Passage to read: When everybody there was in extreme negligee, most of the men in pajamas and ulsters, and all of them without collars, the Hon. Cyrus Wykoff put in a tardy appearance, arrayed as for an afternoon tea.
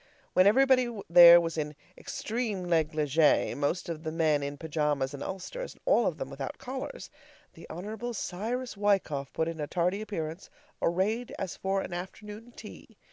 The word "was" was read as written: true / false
true